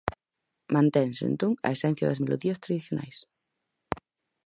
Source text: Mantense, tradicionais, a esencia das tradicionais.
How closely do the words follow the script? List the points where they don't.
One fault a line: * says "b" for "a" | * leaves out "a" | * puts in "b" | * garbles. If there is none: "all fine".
* says "entón" for "tradicionais"
* puts in "melodías"